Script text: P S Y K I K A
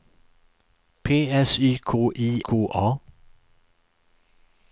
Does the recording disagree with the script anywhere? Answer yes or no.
no